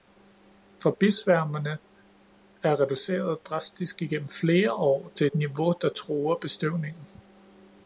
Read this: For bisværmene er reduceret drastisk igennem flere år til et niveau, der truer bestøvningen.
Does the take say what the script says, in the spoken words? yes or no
yes